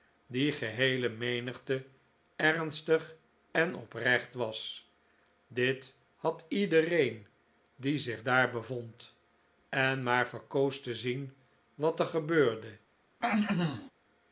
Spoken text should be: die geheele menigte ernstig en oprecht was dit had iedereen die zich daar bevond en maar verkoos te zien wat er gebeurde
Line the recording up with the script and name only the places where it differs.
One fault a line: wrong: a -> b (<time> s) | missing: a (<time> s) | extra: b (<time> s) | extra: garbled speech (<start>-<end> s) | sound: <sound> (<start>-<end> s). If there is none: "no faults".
sound: throat clearing (13.2-13.9 s)